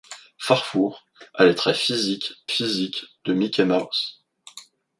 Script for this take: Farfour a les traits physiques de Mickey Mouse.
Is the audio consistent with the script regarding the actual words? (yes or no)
no